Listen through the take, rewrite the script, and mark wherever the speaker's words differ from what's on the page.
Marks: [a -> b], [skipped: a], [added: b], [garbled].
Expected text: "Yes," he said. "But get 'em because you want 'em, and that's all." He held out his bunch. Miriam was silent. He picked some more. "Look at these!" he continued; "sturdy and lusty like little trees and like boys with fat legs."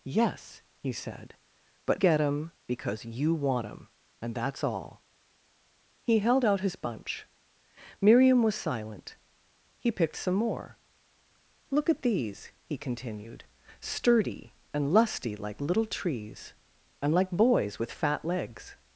"Yes," he said. "But get 'em because you want 'em, and that's all." He held out his bunch. Miriam was silent. He picked some more. "Look at these!" he continued; "sturdy and lusty like little trees and like boys with fat legs."